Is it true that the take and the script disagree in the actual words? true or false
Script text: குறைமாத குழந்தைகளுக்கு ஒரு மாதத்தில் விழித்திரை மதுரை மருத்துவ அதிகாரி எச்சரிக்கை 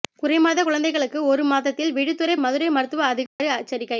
false